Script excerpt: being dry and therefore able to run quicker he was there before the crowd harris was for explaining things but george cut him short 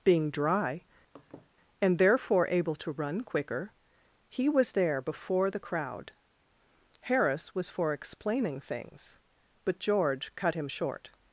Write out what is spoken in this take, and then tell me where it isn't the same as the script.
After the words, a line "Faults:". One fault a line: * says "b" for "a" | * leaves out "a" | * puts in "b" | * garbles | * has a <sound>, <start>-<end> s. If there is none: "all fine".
being dry and therefore able to run quicker he was there before the crowd harris was for explaining things but george cut him short
Faults:
* has a laugh, 1.1-1.5 s